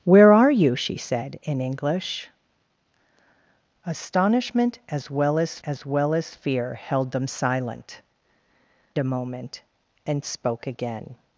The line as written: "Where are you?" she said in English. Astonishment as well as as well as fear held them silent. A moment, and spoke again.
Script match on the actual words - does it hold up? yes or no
yes